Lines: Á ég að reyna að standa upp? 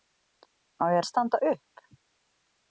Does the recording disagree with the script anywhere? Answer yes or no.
yes